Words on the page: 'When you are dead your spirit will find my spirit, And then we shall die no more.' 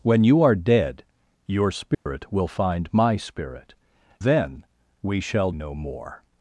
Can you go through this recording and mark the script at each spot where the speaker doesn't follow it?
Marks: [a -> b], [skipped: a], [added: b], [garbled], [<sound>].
'When you are dead your spirit [dropout] will find my spirit, [skipped: And] then we shall [skipped: die] no more.'